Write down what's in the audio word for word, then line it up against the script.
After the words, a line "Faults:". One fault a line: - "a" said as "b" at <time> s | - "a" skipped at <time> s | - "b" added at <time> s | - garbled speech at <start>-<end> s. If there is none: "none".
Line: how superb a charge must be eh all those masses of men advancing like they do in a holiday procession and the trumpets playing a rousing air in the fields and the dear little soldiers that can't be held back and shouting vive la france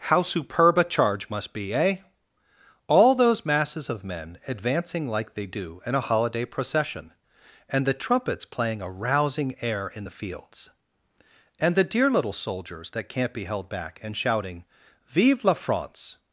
how superb a charge must be eh all those masses of men advancing like they do in a holiday procession and the trumpets playing a rousing air in the fields and the dear little soldiers that can't be held back and shouting vive la france
Faults:
none